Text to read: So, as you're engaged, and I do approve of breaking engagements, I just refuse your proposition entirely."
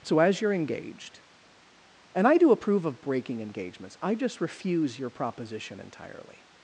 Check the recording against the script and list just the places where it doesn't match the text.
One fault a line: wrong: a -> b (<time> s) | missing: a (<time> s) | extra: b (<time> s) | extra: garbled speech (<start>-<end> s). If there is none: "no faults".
no faults